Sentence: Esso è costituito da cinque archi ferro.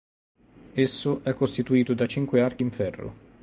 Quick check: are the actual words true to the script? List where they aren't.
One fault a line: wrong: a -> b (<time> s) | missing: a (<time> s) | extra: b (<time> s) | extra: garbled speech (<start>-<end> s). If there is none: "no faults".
extra: in (2.6 s)